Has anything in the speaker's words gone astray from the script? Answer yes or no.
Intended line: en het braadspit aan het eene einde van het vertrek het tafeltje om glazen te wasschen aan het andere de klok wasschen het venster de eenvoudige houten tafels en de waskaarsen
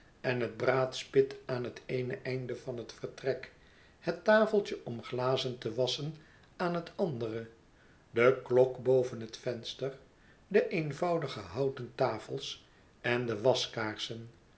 yes